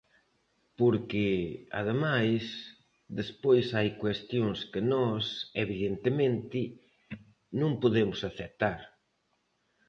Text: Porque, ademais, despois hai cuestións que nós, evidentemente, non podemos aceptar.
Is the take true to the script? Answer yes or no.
yes